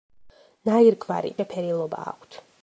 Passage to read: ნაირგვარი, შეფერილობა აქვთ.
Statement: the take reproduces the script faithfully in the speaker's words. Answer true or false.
true